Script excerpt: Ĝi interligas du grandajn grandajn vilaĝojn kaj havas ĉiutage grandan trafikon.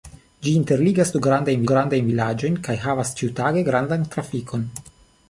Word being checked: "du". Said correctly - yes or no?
yes